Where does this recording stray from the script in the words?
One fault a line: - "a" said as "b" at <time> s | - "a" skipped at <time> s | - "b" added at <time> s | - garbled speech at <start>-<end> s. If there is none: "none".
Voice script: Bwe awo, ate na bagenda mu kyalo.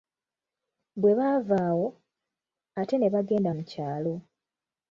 - "baava" added at 1.2 s
- "na" said as "ne" at 3.0 s